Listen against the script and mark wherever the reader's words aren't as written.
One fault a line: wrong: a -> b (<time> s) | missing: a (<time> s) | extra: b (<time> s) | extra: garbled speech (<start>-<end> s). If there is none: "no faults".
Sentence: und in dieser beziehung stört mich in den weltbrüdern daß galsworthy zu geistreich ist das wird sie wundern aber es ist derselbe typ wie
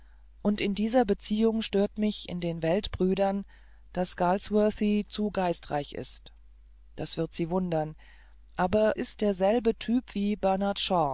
missing: es (8.9 s)